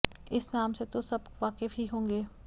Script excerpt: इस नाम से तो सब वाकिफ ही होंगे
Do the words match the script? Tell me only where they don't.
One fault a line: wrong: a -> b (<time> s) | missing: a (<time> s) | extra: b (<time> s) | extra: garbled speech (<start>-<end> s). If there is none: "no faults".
no faults